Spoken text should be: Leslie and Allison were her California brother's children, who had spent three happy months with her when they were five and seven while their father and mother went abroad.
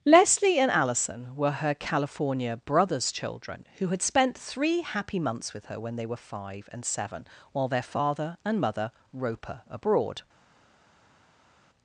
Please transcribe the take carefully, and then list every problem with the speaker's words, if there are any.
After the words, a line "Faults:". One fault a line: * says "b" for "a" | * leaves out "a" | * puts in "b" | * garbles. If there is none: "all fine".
Leslie and Allison were her California brother's children, who had spent three happy months with her when they were five and seven while their father and mother roper abroad.
Faults:
* says "roper" for "went"